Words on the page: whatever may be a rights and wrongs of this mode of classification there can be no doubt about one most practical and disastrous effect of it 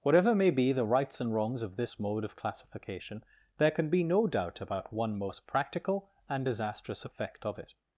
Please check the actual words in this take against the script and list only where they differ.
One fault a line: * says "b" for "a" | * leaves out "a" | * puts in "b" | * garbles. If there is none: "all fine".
* says "the" for "a"